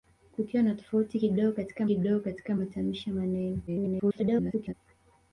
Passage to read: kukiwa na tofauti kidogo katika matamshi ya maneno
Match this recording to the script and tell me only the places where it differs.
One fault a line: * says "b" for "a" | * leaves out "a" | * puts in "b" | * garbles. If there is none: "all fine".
* puts in "kidogo katika"
* garbles